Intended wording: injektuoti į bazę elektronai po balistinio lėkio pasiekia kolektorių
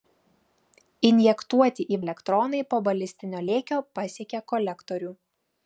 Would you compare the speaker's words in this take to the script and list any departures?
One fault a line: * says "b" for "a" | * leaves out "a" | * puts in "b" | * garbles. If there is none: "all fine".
* leaves out "bazę"